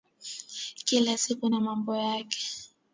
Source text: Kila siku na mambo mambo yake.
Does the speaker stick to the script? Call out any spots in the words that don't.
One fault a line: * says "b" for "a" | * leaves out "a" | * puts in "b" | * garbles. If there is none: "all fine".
* leaves out "mambo"